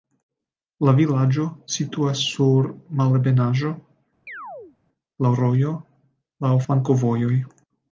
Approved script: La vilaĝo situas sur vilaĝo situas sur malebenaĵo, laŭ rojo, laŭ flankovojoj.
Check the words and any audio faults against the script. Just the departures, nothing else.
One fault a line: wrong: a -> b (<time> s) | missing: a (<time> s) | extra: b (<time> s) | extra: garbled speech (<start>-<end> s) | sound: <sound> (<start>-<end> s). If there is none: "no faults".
missing: vilaĝo situas sur (2.7 s)
sound: chirp (4.3-4.8 s)